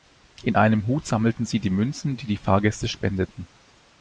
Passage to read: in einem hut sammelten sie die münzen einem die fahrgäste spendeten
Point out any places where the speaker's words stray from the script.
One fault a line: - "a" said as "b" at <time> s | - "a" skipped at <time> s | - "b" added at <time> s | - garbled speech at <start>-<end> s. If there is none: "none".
- "einem" said as "die" at 2.2 s